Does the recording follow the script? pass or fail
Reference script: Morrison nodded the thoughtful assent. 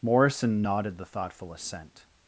pass